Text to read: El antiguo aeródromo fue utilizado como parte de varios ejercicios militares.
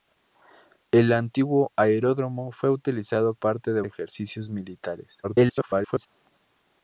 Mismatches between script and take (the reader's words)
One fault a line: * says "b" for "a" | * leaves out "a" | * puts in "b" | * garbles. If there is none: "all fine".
* leaves out "como"
* leaves out "varios"
* garbles